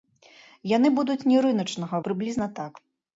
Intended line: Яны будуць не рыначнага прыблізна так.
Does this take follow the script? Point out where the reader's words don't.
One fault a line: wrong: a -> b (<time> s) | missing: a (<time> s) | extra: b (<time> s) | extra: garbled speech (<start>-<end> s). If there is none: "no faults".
no faults